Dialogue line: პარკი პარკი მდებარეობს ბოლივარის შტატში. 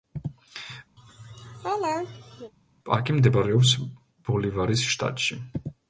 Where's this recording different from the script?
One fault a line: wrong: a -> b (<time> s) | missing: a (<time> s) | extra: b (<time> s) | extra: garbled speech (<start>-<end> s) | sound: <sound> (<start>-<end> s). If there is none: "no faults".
sound: laugh (1.0-2.5 s)
missing: პარკი (3.1 s)